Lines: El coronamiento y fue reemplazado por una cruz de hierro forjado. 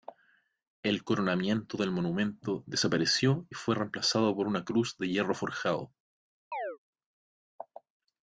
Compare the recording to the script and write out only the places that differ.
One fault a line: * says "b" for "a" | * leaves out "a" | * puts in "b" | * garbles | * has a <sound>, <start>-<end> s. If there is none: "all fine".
* puts in "del monumento desapareció"
* has a chirp, 6.5-6.8 s